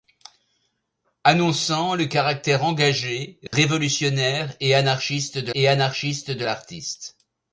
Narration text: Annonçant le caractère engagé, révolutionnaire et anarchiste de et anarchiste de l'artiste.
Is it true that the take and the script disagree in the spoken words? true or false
false